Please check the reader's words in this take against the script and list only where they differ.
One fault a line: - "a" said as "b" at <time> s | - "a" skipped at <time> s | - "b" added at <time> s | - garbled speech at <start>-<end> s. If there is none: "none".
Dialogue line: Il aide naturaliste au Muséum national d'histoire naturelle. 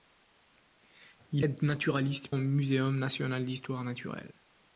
none